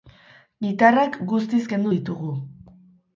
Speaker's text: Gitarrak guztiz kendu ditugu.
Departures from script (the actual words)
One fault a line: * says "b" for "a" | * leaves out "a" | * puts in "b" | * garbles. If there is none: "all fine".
all fine